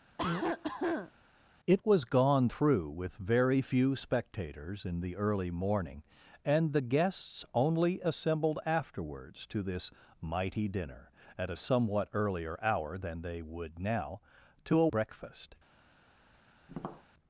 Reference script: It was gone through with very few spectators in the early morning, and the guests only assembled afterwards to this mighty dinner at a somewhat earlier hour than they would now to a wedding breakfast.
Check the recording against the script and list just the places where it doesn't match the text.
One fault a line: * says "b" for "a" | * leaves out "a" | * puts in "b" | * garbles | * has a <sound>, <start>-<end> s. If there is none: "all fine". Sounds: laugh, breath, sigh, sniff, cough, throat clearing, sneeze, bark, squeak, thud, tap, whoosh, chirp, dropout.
* has a cough, 0.2-1.1 s
* leaves out "wedding"
* has a tap, 16.7-17.1 s